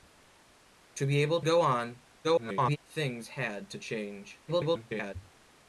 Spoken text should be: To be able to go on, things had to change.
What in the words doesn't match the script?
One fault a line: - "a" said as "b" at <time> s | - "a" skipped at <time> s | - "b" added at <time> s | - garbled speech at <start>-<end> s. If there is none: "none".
- "to" skipped at 1.4 s
- garbled speech at 2.2-2.8 s
- garbled speech at 4.5-5.1 s